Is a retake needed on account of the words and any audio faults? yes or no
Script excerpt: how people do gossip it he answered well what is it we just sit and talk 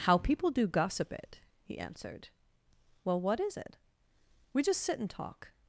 no